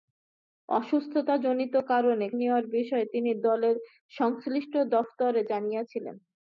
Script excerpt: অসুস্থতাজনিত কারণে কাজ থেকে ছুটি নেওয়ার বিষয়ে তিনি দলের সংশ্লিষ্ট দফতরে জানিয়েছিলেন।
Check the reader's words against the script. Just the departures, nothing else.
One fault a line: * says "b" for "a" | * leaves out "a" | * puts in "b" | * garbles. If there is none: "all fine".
* leaves out "কাজ থেকে ছুটি"